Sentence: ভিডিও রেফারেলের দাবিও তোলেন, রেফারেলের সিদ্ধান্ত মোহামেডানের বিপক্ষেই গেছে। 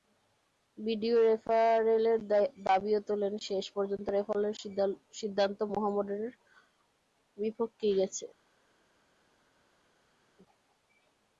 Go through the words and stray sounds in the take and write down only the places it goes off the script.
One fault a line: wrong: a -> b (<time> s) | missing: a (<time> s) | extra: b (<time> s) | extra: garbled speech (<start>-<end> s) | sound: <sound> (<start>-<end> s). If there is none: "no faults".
extra: শেষ পর্যন্ত (3.5 s)